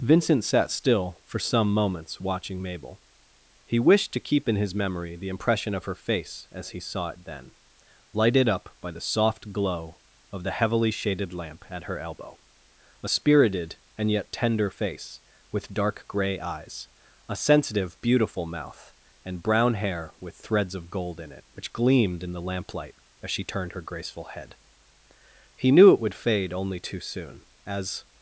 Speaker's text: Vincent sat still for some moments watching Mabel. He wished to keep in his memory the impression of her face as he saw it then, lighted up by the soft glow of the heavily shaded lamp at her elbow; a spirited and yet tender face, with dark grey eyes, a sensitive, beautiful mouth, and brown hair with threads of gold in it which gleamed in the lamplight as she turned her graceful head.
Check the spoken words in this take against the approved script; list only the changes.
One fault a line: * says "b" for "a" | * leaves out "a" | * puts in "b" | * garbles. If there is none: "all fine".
* puts in "He knew it would fade only too soon as"